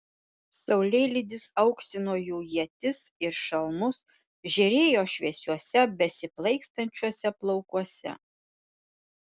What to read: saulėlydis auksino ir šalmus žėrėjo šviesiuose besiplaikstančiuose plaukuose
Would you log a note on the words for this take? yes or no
yes